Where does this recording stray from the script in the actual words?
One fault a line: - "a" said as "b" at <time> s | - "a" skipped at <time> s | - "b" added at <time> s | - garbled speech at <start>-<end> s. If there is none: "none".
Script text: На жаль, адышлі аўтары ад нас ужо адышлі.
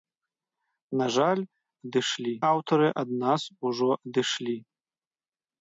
none